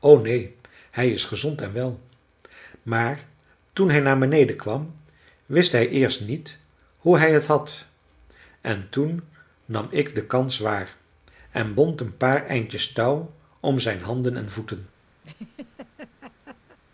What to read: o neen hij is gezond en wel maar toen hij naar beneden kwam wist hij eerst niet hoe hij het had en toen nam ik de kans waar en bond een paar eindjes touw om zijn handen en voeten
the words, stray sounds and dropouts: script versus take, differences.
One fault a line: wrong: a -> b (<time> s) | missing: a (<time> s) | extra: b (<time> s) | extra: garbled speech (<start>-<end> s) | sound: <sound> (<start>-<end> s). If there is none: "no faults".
sound: laugh (15.2-16.8 s)